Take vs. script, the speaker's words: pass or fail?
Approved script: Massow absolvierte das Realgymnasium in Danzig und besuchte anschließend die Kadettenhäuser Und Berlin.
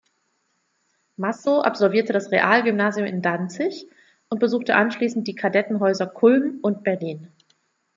fail